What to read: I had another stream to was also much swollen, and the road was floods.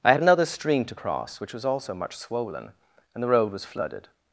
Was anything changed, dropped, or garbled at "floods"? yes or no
yes